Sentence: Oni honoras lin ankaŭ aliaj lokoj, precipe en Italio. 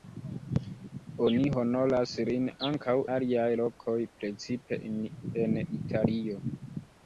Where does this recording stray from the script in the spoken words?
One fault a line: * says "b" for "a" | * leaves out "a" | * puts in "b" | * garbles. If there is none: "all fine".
all fine